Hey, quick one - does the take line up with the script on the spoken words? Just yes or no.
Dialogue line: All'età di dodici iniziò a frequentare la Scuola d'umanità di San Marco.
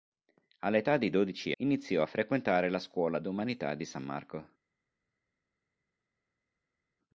yes